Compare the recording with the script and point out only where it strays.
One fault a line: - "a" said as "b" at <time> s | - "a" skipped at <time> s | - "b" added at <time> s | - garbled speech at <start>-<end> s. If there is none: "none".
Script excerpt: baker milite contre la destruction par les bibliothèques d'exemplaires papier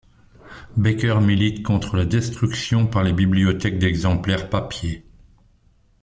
none